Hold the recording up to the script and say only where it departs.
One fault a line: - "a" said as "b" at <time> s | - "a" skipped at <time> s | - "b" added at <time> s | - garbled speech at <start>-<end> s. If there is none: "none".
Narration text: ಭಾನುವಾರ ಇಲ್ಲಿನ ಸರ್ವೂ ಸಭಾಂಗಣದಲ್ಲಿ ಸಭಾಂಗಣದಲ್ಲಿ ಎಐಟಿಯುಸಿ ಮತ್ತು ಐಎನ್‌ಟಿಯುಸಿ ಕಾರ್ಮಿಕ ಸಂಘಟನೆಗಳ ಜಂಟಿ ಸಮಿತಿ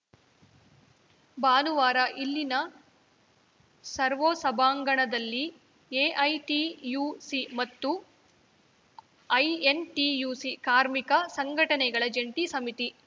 - "ಸಭಾಂಗಣದಲ್ಲಿ" skipped at 5.4 s